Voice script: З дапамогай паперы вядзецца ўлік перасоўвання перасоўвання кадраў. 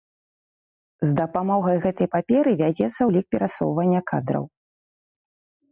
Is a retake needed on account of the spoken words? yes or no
yes